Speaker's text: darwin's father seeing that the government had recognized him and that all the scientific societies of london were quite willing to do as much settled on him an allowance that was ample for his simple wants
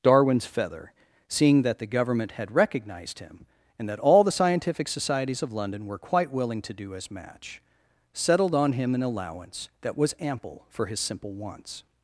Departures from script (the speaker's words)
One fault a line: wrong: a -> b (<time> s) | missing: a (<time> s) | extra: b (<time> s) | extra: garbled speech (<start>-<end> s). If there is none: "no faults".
wrong: father -> feather (0.5 s)
wrong: much -> match (7.1 s)